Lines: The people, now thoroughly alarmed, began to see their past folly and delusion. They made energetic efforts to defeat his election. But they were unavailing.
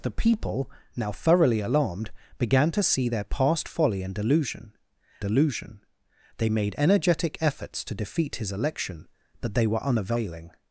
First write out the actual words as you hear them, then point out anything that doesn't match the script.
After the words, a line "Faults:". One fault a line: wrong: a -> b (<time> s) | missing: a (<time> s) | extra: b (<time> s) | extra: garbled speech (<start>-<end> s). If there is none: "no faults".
The people, now thoroughly alarmed, began to see their past folly and delusion delusion. They made energetic efforts to defeat his election. But they were unavailing.
Faults:
extra: delusion (5.2 s)